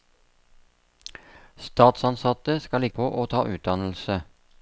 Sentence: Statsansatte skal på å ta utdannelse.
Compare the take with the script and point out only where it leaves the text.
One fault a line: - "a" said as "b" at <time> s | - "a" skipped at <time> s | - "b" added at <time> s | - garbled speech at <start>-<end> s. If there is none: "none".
none